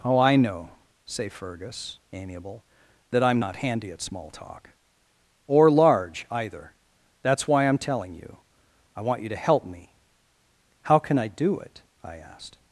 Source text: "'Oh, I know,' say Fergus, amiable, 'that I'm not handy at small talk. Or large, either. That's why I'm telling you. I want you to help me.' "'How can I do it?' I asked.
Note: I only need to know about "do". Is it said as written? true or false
true